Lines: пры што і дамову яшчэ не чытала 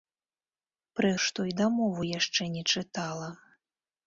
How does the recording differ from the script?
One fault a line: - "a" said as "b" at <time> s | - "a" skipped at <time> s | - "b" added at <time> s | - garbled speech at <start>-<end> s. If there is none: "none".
none